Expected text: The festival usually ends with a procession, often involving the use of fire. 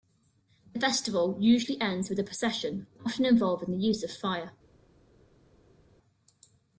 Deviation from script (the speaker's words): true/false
false